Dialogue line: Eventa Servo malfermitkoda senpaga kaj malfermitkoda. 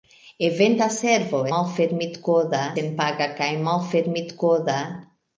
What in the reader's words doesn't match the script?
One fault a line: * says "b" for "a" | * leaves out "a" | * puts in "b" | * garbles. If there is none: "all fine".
all fine